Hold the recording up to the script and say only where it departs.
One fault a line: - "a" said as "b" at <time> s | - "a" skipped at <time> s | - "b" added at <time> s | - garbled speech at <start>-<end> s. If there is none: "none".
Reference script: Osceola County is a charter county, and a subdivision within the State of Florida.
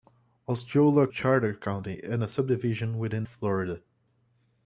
- "County is a" skipped at 1.1 s
- "the State of" skipped at 3.2 s